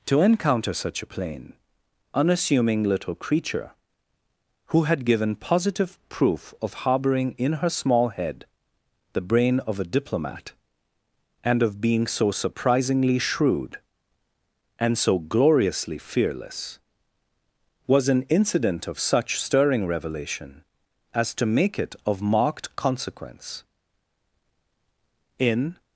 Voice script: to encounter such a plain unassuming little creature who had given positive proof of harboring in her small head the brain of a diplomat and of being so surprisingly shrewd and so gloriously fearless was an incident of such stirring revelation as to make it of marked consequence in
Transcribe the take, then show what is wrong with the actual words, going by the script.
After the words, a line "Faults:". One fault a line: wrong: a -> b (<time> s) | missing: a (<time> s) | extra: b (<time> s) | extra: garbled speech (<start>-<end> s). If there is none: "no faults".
to encounter such a plain unassuming little creature who had given positive proof of harboring in her small head the brain of a diplomat and of being so surprisingly shrewd and so gloriously fearless was an incident of such stirring revelation as to make it of marked consequence in
Faults:
no faults